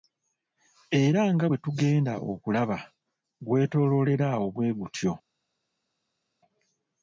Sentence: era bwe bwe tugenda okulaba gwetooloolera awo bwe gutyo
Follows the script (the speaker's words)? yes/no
no